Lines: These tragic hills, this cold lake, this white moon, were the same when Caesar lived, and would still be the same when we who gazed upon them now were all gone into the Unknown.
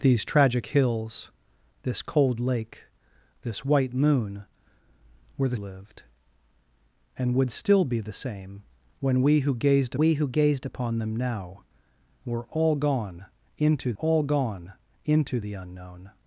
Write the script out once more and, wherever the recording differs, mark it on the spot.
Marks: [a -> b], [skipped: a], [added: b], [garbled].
These tragic hills, this cold lake, this white moon, were the [skipped: same when Caesar] lived, and would still be the same when we who gazed [added: we who gazed] upon them now were all gone into [added: all gone into] the Unknown.